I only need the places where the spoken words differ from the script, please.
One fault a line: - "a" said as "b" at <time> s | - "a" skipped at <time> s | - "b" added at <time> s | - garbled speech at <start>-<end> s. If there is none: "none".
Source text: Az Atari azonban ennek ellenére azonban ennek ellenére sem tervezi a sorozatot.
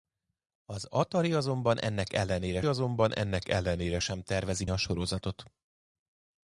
none